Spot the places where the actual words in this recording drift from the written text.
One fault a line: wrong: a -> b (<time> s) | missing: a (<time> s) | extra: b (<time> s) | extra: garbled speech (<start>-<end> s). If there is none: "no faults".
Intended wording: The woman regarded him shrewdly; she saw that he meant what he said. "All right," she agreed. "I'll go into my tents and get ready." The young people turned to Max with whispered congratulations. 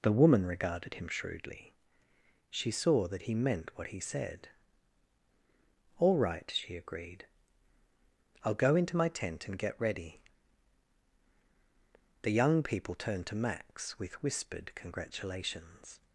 wrong: tents -> tent (9.1 s)